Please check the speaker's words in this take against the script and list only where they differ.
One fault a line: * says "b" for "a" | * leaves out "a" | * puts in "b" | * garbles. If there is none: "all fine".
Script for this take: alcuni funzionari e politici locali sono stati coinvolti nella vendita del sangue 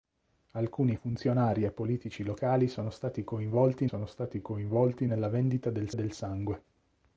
* puts in "sono stati coinvolti"
* puts in "del"